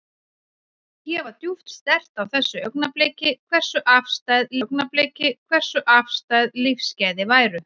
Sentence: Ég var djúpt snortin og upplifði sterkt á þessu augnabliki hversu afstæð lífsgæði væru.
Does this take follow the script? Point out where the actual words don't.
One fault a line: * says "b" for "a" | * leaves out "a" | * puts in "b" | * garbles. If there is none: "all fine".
* says "sterkt á þessu augnabliki hversu afstæð" for "snortin og upplifði sterkt á þessu"